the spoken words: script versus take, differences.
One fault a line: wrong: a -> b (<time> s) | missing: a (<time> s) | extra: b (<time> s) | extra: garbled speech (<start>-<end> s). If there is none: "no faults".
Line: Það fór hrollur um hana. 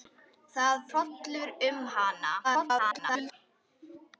missing: fór (0.8 s)
extra: garbled speech (2.4-3.3 s)